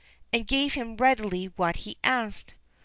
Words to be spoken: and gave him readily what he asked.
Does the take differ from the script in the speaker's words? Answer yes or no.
no